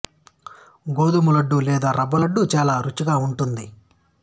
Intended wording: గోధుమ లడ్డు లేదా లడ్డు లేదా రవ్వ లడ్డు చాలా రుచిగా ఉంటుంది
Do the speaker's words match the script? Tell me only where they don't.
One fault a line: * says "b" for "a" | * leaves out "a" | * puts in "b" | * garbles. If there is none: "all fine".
* leaves out "లడ్డు లేదా"